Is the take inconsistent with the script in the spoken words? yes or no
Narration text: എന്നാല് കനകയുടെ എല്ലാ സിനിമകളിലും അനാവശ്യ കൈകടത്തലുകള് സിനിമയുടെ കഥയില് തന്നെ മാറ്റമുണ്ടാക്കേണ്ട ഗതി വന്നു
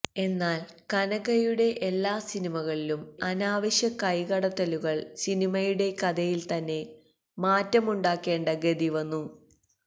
no